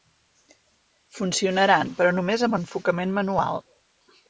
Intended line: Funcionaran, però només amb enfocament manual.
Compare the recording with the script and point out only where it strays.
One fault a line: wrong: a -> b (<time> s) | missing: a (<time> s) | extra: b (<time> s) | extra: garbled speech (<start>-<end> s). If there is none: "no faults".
no faults